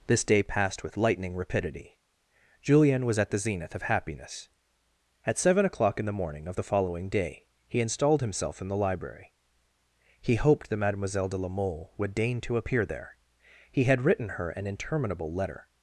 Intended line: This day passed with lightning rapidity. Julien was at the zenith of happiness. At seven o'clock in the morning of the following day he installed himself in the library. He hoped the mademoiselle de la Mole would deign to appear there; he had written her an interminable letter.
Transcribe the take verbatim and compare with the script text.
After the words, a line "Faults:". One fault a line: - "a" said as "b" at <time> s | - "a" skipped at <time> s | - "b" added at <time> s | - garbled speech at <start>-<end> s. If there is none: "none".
This day passed with lightning rapidity. Julien was at the zenith of happiness. At seven o'clock in the morning of the following day he installed himself in the library. He hoped that mademoiselle de la Mole would deign to appear there; he had written her an interminable letter.
Faults:
- "the" said as "that" at 10.7 s